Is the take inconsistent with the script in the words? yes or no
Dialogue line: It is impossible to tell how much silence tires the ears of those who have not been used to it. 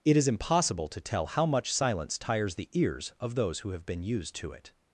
yes